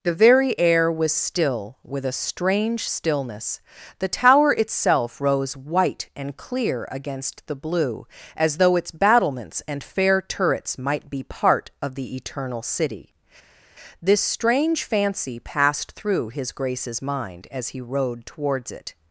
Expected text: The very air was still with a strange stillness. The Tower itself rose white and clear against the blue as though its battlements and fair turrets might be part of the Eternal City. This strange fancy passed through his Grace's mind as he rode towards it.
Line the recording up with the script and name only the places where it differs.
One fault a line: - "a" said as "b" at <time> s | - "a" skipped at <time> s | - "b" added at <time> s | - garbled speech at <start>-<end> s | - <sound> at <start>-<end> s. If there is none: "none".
none